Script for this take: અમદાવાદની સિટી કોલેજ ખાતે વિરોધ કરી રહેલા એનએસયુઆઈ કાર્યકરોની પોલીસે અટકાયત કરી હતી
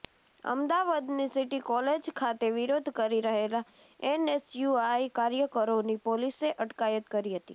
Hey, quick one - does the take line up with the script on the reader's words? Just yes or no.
yes